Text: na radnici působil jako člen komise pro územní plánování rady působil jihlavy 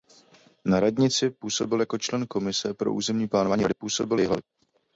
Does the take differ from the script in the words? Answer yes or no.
no